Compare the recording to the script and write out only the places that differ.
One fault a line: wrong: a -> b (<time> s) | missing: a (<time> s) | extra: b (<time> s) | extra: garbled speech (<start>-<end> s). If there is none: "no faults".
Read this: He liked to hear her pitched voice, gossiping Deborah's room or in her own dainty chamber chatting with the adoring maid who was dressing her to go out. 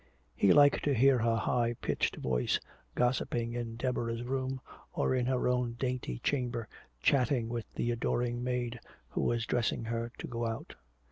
extra: high (1.4 s)
extra: in (3.5 s)